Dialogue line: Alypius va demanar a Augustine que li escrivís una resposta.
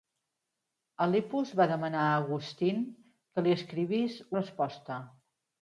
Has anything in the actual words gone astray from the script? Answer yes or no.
yes